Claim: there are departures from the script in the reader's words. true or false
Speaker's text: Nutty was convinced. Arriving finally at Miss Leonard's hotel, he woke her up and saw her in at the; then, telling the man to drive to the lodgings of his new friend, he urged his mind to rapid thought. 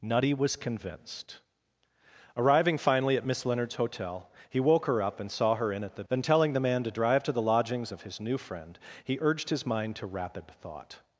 false